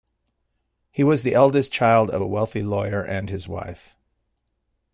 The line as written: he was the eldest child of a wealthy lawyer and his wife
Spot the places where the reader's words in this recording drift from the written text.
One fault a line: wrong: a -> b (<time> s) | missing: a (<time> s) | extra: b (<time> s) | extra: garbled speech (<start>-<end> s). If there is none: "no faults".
no faults